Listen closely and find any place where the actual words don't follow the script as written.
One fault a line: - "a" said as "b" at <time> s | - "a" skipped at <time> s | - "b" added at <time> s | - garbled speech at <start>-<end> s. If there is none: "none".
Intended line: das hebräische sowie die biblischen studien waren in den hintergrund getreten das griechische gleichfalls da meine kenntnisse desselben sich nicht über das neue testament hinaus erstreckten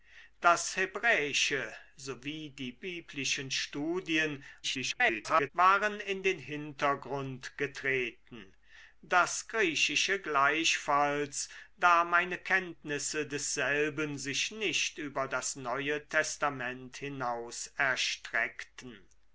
- garbled speech at 4.6-5.5 s